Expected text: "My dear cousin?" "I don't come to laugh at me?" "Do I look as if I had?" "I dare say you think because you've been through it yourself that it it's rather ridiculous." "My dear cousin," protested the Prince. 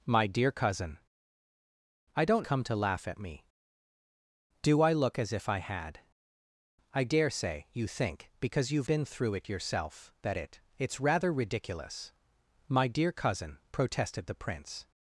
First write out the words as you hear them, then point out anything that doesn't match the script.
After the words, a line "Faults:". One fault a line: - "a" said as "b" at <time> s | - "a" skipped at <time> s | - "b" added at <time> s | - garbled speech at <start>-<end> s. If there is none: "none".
"My dear cousin?" "I don't come to laugh at me?" "Do I look as if I had?" "I dare say you think because you've been through it yourself that it it's rather ridiculous." "My dear cousin," protested the Prince.
Faults:
none